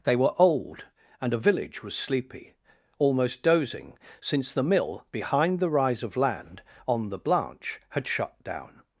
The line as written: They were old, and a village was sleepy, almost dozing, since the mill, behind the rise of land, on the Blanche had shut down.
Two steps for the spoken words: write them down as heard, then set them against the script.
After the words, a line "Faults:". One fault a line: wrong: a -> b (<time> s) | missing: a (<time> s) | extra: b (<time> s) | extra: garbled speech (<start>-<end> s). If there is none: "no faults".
They were old, and a village was sleepy, almost dozing, since the mill, behind the rise of land, on the Blanche had shut down.
Faults:
no faults